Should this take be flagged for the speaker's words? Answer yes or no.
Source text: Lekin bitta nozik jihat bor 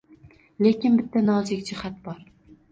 no